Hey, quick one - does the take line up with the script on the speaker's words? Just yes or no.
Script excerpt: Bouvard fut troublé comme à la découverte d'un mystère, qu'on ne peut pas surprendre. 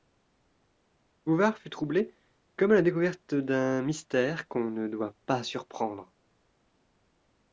no